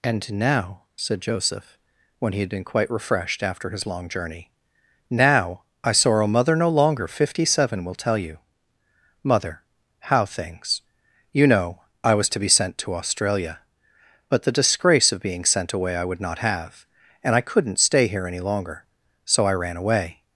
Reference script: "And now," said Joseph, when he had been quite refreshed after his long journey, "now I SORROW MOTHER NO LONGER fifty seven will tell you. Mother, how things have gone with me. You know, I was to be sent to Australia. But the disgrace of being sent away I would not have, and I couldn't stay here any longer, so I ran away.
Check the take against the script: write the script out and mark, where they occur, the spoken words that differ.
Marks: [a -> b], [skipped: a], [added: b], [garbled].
"And now," said Joseph, when he had been quite refreshed after his long journey, "now I SORROW MOTHER NO LONGER fifty seven will tell you. Mother, how things [skipped: have gone with me.] You know, I was to be sent to Australia. But the disgrace of being sent away I would not have, and I couldn't stay here any longer, so I ran away.